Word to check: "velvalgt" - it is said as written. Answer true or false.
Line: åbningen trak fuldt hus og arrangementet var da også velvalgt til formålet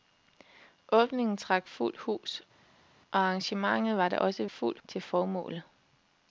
false